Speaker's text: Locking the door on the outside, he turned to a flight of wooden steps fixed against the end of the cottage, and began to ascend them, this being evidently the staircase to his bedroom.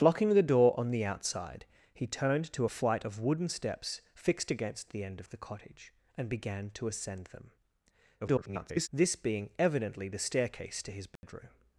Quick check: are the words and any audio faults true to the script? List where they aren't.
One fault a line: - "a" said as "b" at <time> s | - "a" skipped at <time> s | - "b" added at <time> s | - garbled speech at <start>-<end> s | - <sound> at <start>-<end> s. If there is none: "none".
- garbled speech at 8.2-8.9 s
- dropout at 11.2-11.2 s